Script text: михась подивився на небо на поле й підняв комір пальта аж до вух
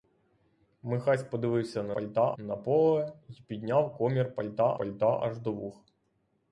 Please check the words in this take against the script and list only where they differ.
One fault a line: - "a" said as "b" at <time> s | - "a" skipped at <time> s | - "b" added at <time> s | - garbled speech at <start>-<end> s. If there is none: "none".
- "небо" said as "пальта" at 1.9 s
- "пальта" added at 4.7 s